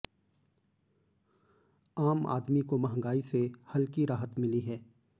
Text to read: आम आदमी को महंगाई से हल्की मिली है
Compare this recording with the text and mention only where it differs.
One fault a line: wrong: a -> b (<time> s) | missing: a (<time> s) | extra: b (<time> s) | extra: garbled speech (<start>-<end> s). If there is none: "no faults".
extra: राहत (4.0 s)